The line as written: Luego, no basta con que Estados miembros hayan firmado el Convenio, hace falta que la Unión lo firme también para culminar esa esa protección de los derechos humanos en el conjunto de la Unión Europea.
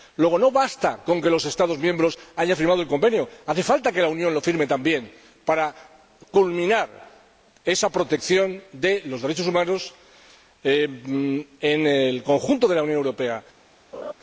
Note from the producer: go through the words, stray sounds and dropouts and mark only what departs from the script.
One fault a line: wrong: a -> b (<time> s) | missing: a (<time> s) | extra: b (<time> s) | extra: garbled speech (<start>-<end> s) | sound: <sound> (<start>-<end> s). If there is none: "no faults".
extra: los (1.3 s)
missing: esa (7.9 s)
sound: laugh (13.9-14.1 s)